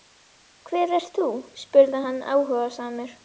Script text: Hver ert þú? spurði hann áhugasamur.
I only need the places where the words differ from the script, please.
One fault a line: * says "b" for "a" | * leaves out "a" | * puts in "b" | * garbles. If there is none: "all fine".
all fine